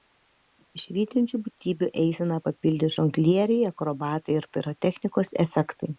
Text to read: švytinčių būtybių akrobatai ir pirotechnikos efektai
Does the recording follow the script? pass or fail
fail